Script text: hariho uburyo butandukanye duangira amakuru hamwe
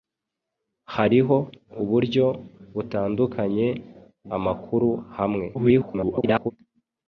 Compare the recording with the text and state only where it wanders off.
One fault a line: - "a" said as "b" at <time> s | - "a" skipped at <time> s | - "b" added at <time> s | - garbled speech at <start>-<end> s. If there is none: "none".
- "duangira" skipped at 3.7 s
- garbled speech at 5.5-6.5 s